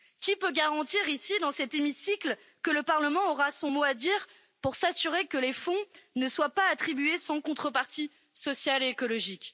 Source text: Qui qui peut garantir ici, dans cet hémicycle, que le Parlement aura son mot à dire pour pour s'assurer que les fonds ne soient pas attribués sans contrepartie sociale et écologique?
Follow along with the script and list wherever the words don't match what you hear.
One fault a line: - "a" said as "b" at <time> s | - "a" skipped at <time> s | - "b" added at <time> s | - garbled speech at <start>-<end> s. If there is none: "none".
- "qui" skipped at 0.3 s
- "pour" skipped at 4.7 s